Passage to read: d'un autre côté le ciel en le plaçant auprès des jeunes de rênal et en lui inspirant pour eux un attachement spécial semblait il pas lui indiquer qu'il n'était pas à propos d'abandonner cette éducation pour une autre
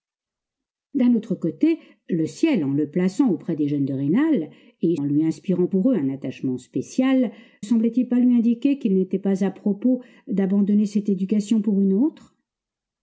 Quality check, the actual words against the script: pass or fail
pass